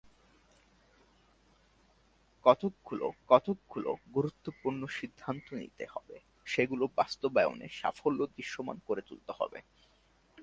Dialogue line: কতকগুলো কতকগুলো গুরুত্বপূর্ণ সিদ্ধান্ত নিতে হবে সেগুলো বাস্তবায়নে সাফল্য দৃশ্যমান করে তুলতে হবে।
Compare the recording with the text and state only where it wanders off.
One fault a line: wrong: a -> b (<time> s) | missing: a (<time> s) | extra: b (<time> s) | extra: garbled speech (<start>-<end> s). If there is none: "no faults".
no faults